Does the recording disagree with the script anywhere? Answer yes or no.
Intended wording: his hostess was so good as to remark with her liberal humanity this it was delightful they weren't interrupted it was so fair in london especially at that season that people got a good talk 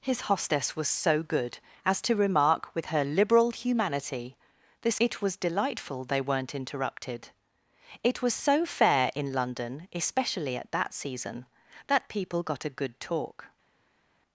no